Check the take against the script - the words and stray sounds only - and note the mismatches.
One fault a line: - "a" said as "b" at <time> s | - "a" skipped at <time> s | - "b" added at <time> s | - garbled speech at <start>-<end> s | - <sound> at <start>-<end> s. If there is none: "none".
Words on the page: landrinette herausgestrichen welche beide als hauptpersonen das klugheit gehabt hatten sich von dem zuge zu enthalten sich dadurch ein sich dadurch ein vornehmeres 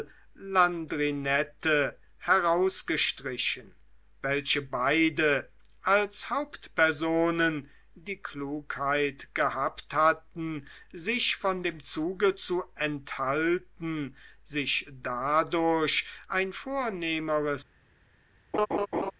- "das" said as "die" at 8.0 s
- "sich dadurch ein" skipped at 16.5 s
- laugh at 18.5-19.1 s